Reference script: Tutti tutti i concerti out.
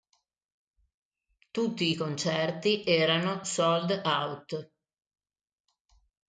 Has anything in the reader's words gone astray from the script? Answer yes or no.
yes